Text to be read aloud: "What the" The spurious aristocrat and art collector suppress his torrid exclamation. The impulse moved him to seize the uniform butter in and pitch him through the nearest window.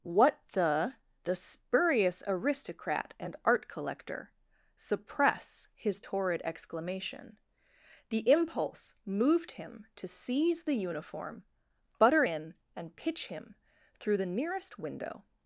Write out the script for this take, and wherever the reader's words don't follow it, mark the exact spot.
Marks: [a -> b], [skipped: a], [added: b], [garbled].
"What the" The spurious aristocrat and art collector suppress his torrid exclamation. The impulse moved him to seize the uniform butter in and pitch him through the nearest window.